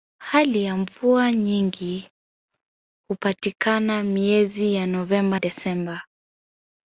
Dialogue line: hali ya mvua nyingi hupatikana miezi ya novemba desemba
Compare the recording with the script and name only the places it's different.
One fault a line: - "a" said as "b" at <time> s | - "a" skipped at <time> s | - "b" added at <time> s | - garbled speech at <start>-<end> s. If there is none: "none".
none